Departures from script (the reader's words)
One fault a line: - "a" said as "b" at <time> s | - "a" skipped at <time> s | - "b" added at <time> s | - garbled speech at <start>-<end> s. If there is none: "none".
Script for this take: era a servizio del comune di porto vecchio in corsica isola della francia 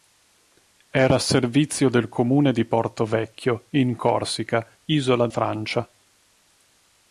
- "della" skipped at 5.3 s